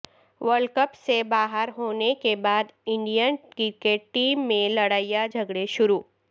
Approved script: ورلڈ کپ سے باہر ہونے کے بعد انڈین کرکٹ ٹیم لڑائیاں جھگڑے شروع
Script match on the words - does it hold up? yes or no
no